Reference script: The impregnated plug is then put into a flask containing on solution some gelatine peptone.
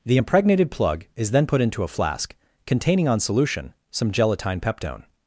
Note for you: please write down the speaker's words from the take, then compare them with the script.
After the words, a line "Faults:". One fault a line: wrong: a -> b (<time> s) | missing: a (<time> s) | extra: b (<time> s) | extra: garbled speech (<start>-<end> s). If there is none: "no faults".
The impregnated plug is then put into a flask containing on solution some gelatine peptone.
Faults:
no faults